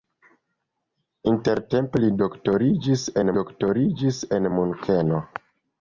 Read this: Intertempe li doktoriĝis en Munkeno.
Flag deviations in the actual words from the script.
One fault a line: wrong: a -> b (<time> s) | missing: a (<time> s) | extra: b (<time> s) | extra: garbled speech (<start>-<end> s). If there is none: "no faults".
extra: doktoriĝis en (3.4 s)